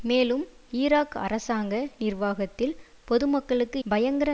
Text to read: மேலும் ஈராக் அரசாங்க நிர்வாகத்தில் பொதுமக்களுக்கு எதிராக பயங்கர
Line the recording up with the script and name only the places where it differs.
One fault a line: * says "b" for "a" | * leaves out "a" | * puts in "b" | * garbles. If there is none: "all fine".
* leaves out "எதிராக"